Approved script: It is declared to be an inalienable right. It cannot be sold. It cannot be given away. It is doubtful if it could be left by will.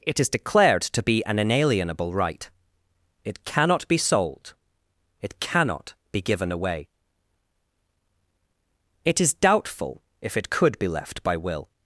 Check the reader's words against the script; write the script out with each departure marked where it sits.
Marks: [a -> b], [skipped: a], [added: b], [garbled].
It is declared to be an inalienable right. It cannot be sold. It cannot be given away. It is doubtful if it could be left by will.